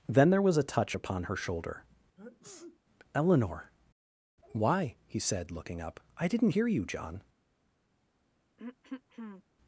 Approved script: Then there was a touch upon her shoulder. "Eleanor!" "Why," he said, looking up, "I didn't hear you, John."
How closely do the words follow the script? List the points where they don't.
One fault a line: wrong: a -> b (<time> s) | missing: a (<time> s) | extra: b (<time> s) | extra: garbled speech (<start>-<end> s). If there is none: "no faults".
no faults